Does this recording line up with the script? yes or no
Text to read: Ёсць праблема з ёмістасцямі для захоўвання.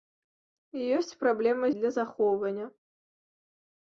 no